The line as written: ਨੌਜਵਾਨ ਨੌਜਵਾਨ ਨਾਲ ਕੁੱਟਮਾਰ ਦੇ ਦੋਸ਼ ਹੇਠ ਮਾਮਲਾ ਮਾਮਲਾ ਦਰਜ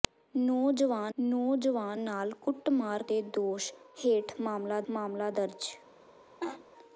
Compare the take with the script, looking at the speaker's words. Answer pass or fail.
pass